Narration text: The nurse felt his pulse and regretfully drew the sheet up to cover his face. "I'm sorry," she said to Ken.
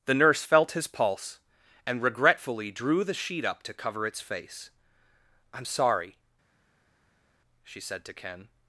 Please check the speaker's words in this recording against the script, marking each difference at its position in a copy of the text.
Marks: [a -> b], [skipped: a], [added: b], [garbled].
The nurse felt his pulse and regretfully drew the sheet up to cover [his -> its] face. "I'm sorry," she said to Ken.